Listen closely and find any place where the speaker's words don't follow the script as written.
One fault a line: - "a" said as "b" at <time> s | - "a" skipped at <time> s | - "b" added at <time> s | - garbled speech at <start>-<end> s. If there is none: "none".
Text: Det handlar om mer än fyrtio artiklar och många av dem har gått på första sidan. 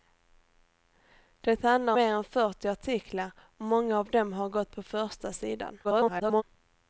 - "om" skipped at 1.9 s
- garbled speech at 5.8-6.4 s